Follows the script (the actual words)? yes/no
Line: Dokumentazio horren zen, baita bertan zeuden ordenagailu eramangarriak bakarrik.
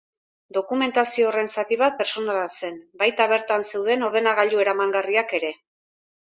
no